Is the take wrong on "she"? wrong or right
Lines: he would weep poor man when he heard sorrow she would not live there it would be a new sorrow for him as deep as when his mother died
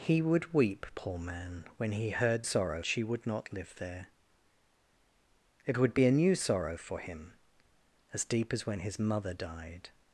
right